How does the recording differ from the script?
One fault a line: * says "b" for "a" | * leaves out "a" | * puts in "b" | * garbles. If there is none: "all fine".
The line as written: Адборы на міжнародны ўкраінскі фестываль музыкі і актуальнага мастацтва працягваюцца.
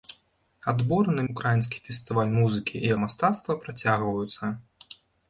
* leaves out "міжнародны"
* leaves out "актуальнага"